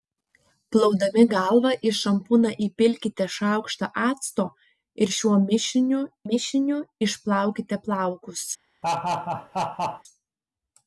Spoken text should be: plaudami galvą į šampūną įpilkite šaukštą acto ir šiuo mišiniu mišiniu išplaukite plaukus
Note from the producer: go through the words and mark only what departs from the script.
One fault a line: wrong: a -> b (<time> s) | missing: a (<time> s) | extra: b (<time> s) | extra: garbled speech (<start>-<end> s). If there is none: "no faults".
no faults